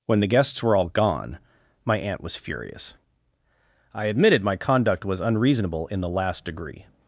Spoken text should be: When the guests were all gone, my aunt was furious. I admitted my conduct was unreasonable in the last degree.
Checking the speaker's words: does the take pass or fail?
pass